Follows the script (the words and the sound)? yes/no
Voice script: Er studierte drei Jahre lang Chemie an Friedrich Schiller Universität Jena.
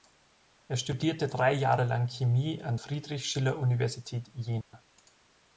no